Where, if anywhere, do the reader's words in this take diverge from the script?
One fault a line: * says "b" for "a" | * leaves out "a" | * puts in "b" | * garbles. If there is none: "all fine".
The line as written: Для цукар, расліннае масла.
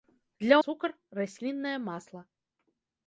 all fine